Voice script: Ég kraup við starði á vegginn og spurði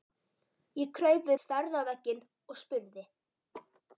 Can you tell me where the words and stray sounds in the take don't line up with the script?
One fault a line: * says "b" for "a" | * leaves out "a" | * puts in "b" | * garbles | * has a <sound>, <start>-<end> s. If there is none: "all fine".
* has a laugh, 3.5-3.8 s